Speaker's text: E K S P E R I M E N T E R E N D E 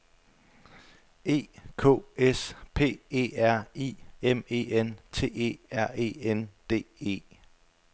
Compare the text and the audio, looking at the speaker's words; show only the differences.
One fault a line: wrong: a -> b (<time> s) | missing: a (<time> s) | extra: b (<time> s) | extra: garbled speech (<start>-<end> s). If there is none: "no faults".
no faults